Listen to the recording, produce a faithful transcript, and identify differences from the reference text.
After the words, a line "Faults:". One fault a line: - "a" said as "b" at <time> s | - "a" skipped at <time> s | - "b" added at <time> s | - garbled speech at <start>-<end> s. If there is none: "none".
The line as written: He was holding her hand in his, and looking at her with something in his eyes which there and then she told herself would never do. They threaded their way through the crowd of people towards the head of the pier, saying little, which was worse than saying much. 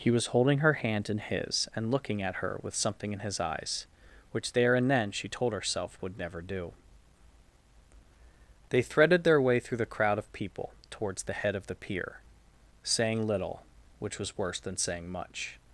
He was holding her hand in his, and looking at her with something in his eyes which there and then she told herself would never do. They threaded their way through the crowd of people towards the head of the pier, saying little, which was worse than saying much.
Faults:
none